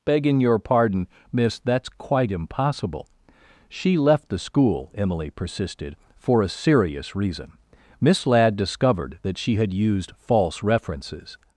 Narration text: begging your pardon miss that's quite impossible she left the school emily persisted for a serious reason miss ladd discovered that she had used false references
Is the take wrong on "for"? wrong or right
right